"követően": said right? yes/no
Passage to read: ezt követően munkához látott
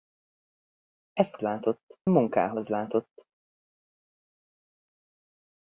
no